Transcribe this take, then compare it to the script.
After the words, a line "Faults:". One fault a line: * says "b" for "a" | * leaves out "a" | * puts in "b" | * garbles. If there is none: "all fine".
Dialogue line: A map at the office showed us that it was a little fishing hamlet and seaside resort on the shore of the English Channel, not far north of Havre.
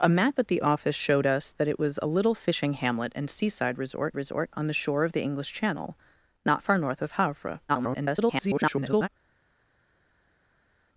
A map at the office showed us that it was a little fishing hamlet and seaside resort resort on the shore of the English Channel, not far north of Havre. [garbled]
Faults:
* puts in "resort"
* garbles